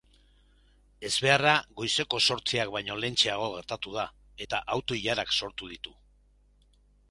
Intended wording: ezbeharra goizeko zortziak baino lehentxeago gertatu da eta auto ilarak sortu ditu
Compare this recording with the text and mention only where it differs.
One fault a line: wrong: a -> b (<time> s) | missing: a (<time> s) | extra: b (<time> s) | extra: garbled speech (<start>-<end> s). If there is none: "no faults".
no faults